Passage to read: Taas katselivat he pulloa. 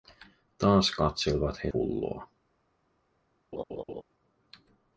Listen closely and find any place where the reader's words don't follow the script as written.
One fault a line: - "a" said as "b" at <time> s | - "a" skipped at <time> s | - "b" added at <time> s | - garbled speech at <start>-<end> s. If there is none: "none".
none